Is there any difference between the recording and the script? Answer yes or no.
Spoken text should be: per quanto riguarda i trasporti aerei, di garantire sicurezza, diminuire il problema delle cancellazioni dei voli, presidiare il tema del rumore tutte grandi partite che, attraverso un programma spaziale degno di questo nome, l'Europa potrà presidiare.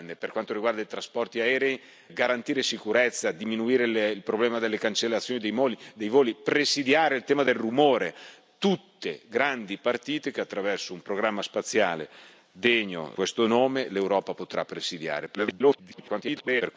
yes